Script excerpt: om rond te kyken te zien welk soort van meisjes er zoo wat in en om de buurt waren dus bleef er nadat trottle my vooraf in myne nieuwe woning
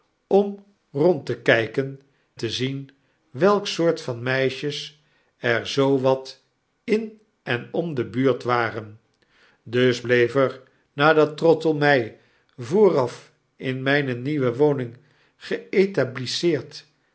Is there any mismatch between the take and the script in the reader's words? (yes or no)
no